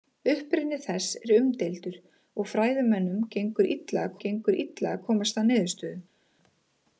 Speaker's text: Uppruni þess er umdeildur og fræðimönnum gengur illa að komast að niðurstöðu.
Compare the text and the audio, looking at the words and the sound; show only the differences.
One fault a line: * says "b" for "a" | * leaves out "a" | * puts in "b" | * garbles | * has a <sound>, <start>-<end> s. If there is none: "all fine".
* puts in "gengur illa að"